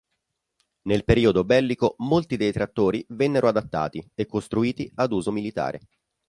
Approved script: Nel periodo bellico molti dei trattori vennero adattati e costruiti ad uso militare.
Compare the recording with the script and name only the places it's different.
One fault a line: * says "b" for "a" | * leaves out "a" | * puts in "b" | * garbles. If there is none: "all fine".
all fine